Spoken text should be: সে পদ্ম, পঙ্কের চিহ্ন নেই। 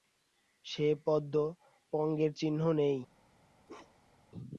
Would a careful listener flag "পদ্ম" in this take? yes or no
no